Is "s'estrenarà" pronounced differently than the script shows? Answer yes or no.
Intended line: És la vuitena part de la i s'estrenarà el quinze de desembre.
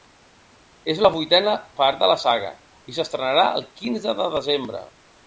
no